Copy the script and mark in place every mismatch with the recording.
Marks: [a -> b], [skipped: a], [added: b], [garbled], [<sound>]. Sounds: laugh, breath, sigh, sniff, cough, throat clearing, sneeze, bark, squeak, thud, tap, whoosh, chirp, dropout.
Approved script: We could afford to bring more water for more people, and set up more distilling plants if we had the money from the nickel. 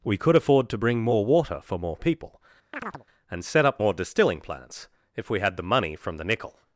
We could afford to bring more water for more people, [chirp] and set up more distilling plants if we had the money from the nickel.